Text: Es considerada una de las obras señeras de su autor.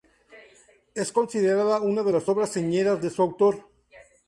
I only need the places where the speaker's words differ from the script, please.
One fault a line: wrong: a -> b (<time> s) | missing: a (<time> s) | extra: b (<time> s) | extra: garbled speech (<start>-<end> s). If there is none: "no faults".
no faults